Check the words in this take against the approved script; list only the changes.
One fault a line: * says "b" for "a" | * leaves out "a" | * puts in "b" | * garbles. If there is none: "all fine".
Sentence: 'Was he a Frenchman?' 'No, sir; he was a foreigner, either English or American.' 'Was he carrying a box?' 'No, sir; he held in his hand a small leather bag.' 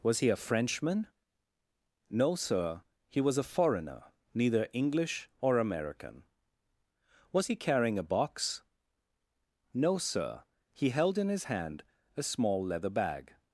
* says "neither" for "either"